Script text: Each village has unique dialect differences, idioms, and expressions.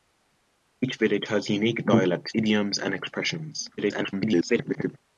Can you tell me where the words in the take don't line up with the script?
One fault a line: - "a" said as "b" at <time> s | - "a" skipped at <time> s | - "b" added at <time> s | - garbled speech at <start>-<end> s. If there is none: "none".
- "differences" skipped at 2.3 s
- garbled speech at 3.8-5.0 s